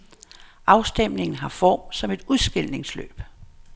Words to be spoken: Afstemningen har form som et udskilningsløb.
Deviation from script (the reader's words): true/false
false